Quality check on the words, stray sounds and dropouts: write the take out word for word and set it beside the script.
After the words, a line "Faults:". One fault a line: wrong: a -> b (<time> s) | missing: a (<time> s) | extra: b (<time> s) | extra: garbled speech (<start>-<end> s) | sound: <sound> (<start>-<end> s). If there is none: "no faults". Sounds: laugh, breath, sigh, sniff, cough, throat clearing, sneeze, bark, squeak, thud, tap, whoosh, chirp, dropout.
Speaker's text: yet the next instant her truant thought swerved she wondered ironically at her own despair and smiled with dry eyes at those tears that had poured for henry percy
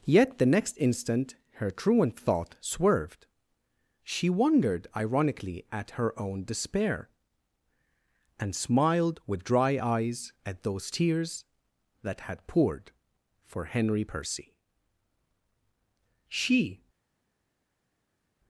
yet the next instant her truant thought swerved she wondered ironically at her own despair and smiled with dry eyes at those tears that had poured for henry percy she
Faults:
extra: she (16.3 s)